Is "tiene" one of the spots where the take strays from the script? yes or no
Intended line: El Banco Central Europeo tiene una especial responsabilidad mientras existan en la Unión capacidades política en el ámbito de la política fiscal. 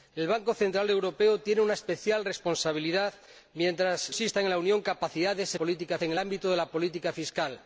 no